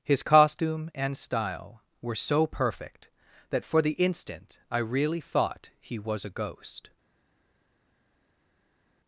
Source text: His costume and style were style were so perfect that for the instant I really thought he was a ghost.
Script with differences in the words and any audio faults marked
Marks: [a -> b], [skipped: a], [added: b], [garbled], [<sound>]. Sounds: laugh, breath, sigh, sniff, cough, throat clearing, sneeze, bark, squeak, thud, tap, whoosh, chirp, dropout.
His costume and style were [skipped: style were] so perfect that for the instant I really thought he was a ghost.